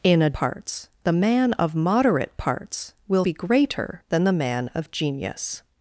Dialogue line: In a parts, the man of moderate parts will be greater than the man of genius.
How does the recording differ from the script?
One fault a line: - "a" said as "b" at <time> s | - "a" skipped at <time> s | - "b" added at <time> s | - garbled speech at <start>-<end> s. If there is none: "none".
none